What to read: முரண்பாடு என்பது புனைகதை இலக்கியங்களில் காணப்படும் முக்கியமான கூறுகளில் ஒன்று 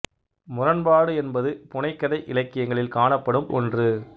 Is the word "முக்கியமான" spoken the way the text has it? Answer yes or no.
no